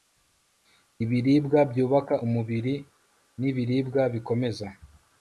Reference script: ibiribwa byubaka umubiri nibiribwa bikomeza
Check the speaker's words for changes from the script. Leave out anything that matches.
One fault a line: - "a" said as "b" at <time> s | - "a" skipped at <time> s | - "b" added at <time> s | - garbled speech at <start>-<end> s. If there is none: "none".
none